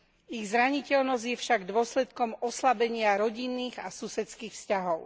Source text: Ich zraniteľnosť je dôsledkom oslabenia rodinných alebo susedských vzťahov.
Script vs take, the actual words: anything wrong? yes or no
yes